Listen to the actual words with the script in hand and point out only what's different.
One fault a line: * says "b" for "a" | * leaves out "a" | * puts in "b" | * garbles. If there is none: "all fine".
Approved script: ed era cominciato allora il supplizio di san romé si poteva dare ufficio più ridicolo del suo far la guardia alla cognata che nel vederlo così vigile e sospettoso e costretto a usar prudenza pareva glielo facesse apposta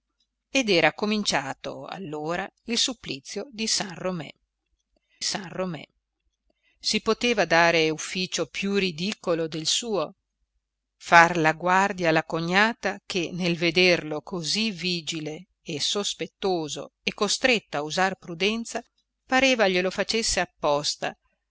* puts in "san romé"